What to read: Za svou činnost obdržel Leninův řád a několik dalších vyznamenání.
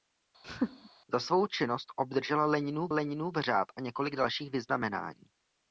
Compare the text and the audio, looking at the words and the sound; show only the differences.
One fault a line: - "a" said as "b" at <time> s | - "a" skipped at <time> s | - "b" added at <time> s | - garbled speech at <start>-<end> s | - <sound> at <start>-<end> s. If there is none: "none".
- laugh at 0.4-0.9 s
- "Leninův" added at 2.9 s